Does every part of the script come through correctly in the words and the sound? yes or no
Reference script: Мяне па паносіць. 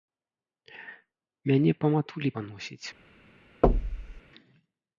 no